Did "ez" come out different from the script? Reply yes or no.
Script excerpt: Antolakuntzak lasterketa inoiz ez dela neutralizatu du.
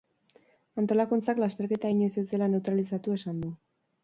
no